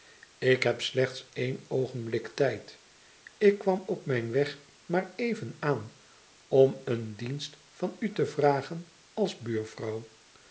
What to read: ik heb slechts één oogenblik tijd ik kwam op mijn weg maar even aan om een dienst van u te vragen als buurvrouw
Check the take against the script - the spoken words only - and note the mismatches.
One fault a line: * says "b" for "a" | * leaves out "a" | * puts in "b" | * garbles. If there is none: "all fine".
all fine